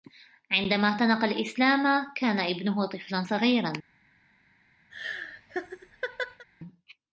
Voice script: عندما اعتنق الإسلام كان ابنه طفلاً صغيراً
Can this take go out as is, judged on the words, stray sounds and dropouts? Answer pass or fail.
fail